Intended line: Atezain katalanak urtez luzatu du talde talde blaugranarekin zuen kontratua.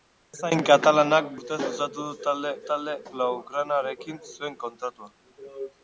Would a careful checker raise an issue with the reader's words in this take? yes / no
no